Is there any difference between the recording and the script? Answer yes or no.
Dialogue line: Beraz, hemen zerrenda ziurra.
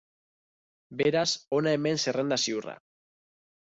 yes